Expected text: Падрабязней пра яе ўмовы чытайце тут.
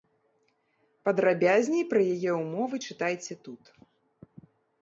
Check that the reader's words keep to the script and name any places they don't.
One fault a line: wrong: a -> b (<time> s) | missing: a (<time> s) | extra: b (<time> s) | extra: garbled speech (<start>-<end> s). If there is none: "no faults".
no faults